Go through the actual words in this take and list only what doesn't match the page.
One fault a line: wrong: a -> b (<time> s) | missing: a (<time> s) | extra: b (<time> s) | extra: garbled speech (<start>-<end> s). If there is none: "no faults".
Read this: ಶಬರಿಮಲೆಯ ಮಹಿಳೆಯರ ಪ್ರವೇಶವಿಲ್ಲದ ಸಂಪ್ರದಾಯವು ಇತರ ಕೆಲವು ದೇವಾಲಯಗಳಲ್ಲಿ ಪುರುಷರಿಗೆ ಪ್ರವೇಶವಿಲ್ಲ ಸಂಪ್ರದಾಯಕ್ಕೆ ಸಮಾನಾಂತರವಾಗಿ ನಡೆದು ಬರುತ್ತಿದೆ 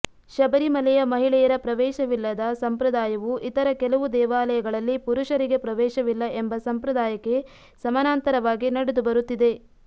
extra: ಎಂಬ (6.4 s)